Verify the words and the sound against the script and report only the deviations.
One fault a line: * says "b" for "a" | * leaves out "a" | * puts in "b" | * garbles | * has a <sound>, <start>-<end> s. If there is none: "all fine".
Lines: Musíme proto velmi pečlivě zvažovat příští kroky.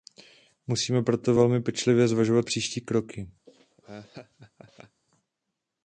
* has a laugh, 3.5-5.0 s